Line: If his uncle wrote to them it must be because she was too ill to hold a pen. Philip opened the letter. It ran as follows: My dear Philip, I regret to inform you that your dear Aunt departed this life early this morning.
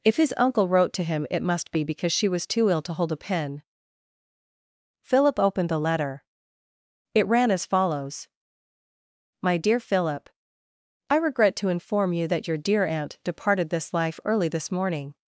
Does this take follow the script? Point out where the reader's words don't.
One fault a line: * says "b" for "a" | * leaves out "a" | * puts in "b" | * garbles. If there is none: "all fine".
* says "him" for "them"